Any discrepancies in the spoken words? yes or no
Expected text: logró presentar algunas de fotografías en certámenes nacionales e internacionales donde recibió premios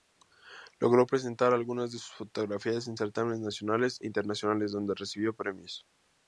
yes